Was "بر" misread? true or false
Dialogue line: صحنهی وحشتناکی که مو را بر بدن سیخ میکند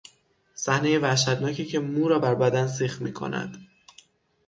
false